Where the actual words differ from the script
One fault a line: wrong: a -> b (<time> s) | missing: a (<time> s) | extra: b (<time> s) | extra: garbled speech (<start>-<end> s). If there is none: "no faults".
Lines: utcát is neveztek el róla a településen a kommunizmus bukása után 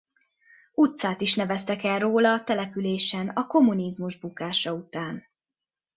no faults